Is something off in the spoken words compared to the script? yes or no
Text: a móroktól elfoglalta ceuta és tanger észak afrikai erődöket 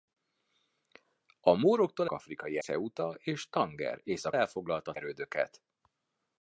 yes